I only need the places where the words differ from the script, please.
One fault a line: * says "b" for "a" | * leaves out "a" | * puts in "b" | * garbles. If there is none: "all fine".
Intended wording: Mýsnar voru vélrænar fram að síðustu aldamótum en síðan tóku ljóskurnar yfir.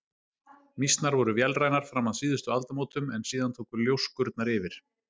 all fine